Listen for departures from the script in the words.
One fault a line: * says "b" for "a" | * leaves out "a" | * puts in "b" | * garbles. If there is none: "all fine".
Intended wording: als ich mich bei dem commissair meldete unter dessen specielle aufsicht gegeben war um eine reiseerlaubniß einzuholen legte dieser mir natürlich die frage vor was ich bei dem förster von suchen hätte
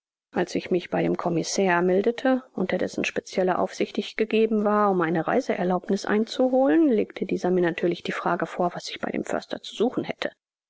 * puts in "ich"
* says "zu" for "von"